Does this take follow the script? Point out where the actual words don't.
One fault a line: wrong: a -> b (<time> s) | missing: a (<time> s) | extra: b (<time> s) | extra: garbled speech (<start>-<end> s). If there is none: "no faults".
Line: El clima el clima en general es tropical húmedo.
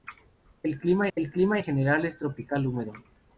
no faults